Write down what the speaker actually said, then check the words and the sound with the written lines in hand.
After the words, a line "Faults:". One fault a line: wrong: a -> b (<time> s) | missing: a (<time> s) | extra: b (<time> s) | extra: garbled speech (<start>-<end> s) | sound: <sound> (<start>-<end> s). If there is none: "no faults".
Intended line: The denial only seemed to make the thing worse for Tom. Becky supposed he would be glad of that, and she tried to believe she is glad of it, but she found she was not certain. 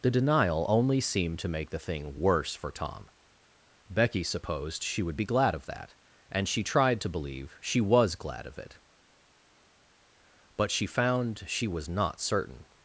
The denial only seemed to make the thing worse for Tom. Becky supposed she would be glad of that, and she tried to believe she was glad of it, but she found she was not certain.
Faults:
wrong: he -> she (4.8 s)
wrong: is -> was (7.8 s)